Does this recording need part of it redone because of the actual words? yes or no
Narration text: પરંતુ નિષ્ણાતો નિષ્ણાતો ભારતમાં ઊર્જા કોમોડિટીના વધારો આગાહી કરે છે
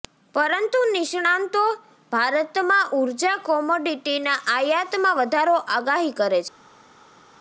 yes